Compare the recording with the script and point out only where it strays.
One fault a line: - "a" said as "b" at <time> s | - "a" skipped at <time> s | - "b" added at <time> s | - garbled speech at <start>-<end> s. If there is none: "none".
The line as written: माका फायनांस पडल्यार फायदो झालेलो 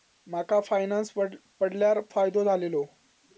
none